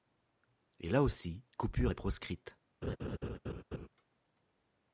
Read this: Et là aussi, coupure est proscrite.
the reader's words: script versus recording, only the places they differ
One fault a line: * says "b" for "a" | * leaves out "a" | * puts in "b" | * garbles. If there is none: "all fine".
all fine